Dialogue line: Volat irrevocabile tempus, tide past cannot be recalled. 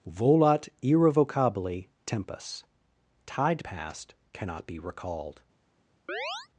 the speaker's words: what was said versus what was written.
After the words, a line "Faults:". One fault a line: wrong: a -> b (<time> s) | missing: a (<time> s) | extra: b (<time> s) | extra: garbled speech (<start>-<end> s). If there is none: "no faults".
Volat irrevocabile tempus, tide past cannot be recalled.
Faults:
no faults